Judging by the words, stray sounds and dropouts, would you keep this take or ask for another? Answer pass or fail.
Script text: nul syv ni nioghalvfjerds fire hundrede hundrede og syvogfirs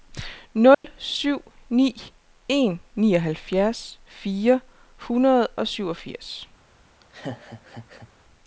fail